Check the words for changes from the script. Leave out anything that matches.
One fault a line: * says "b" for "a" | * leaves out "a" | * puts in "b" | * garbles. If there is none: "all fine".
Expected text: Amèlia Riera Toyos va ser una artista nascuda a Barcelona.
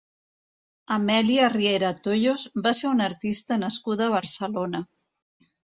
all fine